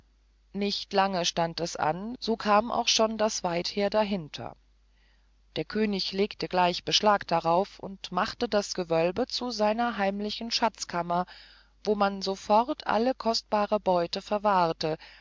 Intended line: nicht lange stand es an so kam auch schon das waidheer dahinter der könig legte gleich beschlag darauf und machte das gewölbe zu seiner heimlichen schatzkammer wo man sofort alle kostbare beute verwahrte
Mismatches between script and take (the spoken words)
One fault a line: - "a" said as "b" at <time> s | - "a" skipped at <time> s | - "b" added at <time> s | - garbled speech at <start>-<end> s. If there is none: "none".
none